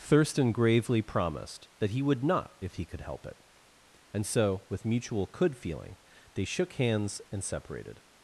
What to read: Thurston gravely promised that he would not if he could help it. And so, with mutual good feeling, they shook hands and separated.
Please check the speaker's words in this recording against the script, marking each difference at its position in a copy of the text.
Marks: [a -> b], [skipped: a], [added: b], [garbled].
Thurston gravely promised that he would not if he could help it. And so, with mutual [good -> could] feeling, they shook hands and separated.